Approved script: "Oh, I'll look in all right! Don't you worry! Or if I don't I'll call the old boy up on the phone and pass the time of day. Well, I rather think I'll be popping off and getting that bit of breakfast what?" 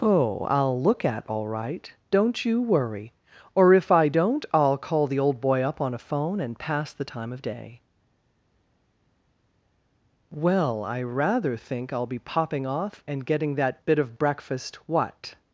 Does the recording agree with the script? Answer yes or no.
no